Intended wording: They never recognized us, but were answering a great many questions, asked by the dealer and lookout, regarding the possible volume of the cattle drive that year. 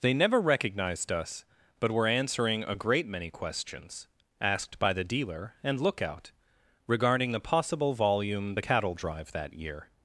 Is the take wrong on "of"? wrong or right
wrong